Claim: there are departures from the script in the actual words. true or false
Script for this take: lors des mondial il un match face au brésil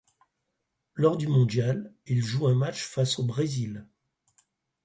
true